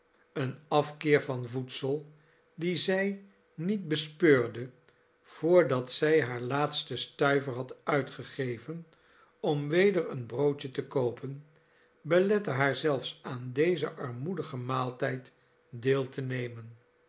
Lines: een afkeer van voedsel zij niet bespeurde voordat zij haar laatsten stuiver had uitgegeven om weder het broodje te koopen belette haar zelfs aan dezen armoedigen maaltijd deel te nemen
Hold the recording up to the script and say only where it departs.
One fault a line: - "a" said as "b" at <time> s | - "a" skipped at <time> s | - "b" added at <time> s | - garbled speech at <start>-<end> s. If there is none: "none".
- "dien" added at 2.5 s
- "het" said as "een" at 10.1 s